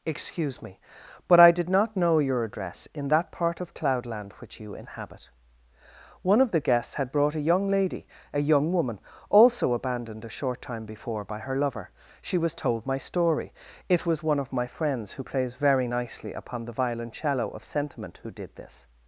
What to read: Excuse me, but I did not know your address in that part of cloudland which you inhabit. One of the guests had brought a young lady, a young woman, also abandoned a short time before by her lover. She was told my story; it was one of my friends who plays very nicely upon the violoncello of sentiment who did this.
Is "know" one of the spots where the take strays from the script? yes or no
no